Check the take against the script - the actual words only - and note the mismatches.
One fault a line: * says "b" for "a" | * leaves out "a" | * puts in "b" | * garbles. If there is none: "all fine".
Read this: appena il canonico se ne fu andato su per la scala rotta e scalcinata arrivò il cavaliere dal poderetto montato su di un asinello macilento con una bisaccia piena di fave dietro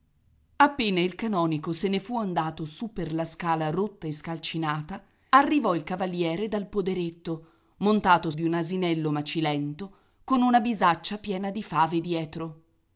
* leaves out "su"